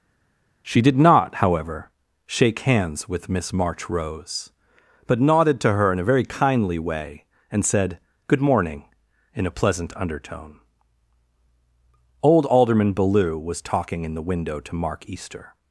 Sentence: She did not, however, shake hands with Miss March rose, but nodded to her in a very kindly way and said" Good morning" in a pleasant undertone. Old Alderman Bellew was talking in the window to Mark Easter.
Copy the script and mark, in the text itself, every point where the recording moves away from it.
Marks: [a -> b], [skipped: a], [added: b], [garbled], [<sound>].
She did not, however, shake hands with Miss March rose, but nodded to her in a very kindly way and said" Good morning" in a pleasant undertone. Old Alderman Bellew was talking in the window to Mark Easter.